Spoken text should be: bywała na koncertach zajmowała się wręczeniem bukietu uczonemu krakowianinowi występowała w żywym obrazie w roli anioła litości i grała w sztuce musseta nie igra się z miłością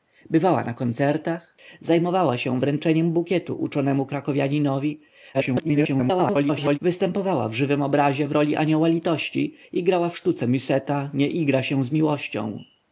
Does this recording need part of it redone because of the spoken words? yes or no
yes